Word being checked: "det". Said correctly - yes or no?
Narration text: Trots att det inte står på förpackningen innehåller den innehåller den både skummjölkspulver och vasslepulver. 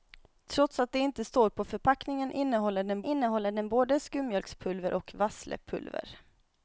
yes